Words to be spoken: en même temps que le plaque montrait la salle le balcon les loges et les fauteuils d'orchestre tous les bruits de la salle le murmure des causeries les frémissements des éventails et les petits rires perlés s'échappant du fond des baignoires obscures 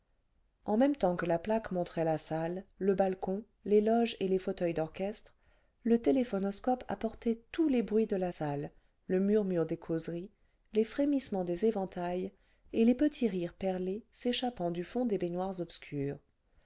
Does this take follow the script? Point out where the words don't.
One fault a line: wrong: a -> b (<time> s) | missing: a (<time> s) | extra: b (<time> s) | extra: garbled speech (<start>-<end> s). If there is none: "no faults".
wrong: le -> la (1.3 s)
extra: le téléphonoscope apportait (5.8 s)